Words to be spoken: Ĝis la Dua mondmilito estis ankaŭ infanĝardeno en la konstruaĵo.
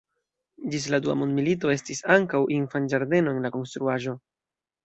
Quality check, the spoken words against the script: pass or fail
pass